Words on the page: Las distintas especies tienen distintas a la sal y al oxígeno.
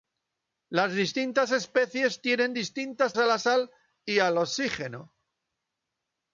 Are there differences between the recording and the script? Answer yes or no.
no